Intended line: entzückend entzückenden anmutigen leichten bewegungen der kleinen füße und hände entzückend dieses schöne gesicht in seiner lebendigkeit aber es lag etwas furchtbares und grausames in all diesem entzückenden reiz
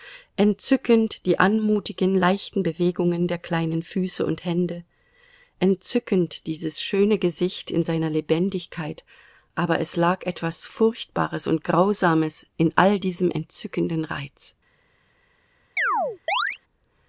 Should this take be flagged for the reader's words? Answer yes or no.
yes